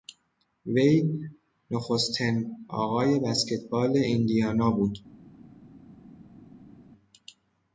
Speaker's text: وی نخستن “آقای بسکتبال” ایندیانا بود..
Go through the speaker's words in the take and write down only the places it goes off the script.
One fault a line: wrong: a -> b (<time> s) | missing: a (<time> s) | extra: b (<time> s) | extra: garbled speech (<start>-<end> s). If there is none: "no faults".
no faults